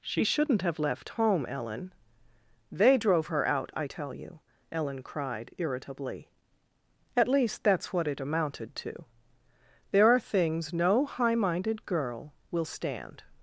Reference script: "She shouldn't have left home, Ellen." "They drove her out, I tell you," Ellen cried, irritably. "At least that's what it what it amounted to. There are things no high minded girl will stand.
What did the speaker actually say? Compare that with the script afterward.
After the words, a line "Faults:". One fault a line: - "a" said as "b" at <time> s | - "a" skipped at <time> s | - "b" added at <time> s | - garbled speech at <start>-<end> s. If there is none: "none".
"She shouldn't have left home, Ellen." "They drove her out, I tell you," Ellen cried, irritably. "At least that's what it amounted to. There are things no high minded girl will stand.
Faults:
- "what it" skipped at 8.2 s